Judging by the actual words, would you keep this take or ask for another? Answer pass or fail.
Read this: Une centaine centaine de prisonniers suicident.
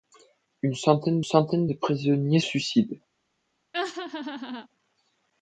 pass